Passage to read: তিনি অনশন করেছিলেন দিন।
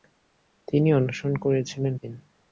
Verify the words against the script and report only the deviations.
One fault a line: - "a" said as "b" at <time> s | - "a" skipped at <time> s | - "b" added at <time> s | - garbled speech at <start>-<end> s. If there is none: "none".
none